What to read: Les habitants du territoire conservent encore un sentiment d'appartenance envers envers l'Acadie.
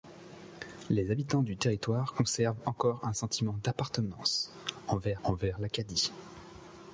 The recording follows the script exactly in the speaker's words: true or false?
true